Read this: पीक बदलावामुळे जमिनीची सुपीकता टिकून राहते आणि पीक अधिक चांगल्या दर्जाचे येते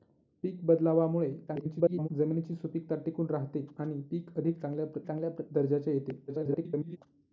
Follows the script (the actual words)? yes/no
no